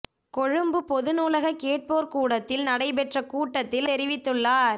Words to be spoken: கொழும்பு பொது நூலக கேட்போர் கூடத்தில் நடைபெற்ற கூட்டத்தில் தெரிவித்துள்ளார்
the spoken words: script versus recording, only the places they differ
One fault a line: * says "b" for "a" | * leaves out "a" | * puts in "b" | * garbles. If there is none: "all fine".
all fine